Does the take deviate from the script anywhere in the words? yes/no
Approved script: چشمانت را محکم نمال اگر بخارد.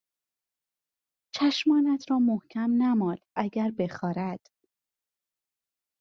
no